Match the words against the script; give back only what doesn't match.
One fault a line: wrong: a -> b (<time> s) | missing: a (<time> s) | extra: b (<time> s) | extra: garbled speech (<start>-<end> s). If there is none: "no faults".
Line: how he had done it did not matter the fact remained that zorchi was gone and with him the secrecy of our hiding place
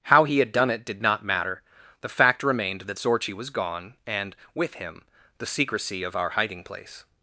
no faults